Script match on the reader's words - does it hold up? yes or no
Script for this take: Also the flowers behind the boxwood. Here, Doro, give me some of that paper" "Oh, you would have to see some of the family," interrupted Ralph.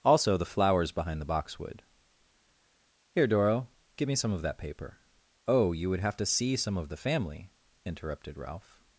yes